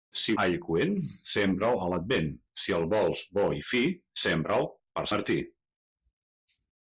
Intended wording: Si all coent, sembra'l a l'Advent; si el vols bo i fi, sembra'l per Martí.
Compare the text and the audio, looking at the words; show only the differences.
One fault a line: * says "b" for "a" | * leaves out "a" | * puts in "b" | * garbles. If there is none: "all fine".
all fine